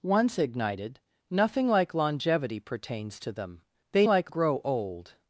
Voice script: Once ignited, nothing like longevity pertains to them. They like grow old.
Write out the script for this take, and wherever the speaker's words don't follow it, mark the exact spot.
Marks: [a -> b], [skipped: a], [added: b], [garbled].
Once ignited, nothing like longevity pertains to them. They like grow old.